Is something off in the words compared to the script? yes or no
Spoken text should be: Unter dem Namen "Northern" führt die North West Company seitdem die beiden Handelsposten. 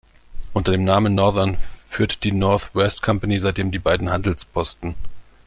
no